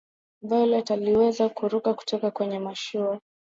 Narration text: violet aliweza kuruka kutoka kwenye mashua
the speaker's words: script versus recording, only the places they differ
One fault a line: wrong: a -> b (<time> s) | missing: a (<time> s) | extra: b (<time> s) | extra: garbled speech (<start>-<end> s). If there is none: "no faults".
no faults